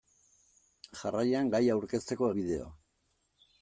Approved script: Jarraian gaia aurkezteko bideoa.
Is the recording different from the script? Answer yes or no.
no